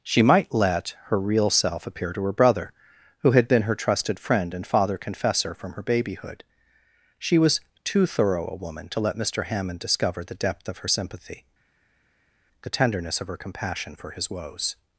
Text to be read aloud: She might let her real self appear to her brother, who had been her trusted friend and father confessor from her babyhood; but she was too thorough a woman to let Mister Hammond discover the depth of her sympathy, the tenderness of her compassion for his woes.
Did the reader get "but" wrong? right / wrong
wrong